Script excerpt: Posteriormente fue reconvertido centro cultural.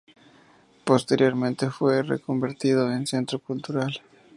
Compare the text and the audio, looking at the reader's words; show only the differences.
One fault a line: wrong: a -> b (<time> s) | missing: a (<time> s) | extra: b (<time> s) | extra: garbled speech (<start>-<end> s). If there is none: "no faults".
extra: en (2.9 s)